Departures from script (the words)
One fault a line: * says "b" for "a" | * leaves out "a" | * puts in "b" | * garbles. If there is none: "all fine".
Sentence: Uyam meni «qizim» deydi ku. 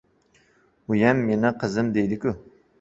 all fine